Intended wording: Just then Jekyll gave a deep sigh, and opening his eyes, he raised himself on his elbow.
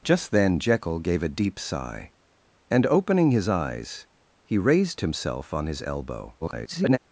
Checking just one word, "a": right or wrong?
right